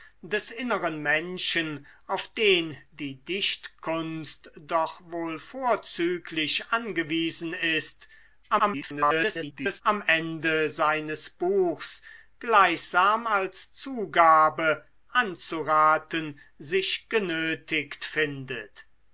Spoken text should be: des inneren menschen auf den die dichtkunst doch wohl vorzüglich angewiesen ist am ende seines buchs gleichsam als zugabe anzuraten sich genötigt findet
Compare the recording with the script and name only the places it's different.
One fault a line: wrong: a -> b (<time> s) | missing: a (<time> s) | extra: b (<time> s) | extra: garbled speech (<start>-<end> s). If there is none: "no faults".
extra: garbled speech (8.4-9.8 s)